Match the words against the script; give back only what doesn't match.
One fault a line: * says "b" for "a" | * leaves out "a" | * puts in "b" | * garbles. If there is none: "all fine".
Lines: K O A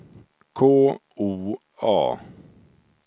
all fine